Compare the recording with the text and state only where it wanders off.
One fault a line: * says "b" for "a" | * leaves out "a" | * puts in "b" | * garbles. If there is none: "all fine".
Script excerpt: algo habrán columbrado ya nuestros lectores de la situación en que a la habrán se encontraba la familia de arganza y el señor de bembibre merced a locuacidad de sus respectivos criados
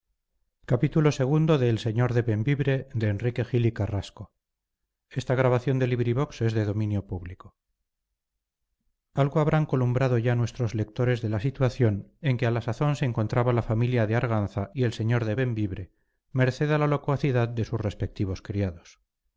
* says "sazón" for "habrán"
* puts in "la"